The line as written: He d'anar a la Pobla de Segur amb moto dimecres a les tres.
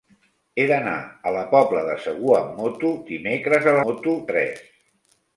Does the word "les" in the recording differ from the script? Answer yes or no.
yes